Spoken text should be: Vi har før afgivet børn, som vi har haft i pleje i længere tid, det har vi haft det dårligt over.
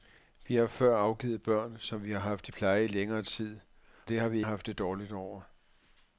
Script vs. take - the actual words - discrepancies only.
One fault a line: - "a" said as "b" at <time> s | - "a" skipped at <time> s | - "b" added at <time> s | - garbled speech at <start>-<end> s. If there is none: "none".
none